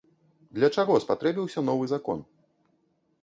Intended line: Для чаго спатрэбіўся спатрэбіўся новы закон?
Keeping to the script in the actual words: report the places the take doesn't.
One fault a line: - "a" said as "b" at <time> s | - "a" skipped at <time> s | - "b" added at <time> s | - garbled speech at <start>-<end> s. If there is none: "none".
- "спатрэбіўся" skipped at 1.6 s